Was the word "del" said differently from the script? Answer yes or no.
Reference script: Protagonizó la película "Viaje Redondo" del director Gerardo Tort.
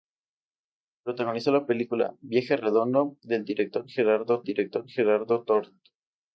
no